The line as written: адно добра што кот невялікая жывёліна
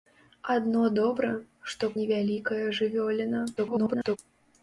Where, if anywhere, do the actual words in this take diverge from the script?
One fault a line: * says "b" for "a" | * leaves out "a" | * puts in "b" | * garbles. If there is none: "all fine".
* leaves out "кот"
* garbles